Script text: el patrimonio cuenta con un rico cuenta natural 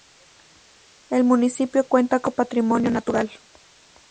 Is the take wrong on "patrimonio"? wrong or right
wrong